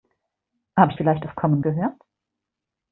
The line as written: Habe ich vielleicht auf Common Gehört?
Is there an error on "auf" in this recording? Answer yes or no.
no